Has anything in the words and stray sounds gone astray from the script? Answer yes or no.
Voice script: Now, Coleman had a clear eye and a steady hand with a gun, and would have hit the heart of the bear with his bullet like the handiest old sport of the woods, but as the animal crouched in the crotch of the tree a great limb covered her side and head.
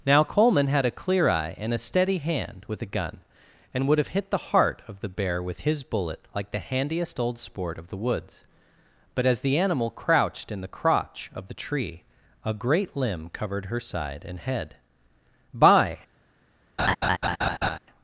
yes